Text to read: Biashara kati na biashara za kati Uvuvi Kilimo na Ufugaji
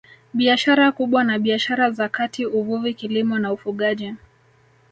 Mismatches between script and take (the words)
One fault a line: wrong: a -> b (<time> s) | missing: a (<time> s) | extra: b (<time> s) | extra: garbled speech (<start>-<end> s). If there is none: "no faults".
wrong: kati -> kubwa (0.9 s)